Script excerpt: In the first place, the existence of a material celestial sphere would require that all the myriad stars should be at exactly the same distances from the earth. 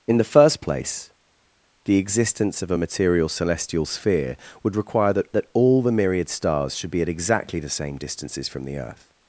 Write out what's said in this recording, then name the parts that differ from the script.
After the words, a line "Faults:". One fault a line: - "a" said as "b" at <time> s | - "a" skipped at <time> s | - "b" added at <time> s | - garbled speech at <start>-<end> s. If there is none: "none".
In the first place, the existence of a material celestial sphere would require that that all the myriad stars should be at exactly the same distances from the earth.
Faults:
- "that" added at 5.3 s